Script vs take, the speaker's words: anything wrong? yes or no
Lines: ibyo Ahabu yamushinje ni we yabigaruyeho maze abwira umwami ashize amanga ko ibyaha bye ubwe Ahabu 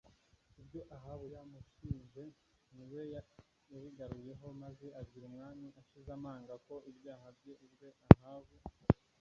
no